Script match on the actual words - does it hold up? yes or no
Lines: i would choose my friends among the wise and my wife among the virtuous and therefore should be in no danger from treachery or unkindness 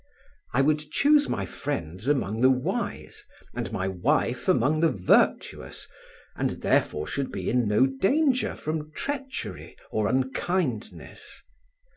yes